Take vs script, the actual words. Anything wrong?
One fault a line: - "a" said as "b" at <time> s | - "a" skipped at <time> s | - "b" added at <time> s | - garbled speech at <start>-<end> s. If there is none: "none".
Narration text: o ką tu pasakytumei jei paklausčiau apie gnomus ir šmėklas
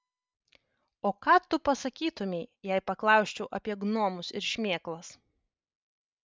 none